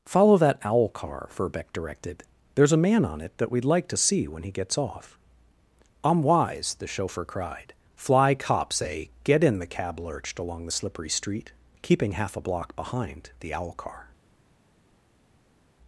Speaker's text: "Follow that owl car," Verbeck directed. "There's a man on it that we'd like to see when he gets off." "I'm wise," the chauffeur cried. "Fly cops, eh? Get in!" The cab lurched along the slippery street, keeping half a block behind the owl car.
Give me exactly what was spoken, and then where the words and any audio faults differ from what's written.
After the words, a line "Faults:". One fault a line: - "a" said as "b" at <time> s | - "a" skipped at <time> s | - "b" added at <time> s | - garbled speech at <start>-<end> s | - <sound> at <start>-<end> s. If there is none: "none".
"Follow that owl car," Verbeck directed. "There's a man on it that we'd like to see when he gets off." "I'm wise," the chauffeur cried. "Fly cops, eh? Get in!" The cab lurched along the slippery street, keeping half a block behind the owl car.
Faults:
none